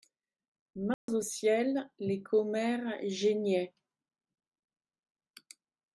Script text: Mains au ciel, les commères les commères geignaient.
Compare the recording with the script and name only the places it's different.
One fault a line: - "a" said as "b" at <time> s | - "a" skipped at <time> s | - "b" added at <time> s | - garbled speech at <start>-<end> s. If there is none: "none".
- "les commères" skipped at 3.0 s